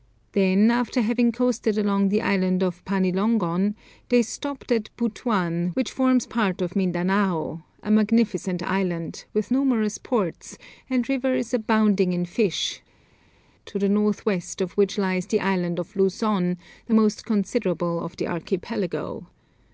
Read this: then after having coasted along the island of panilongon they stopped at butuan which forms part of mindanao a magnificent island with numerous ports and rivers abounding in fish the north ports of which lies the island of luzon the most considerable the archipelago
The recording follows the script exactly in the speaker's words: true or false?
false